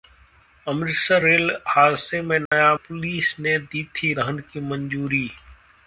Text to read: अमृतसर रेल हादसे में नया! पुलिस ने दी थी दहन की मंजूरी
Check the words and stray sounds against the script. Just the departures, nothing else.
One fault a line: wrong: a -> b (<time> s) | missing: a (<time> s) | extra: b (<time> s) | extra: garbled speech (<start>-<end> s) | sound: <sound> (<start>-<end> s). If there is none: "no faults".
sound: dropout (2.5-2.5 s)